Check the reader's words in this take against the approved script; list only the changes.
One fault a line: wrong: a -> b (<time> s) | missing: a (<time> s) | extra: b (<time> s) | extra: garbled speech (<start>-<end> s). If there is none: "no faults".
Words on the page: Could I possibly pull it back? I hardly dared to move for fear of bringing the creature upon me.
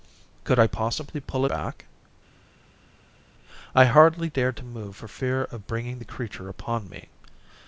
missing: it (1.4 s)